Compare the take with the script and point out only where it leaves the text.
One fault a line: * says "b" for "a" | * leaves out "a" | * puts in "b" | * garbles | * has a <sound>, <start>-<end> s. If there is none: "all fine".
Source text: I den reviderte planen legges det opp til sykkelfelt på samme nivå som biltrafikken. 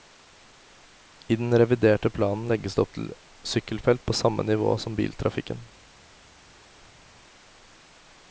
all fine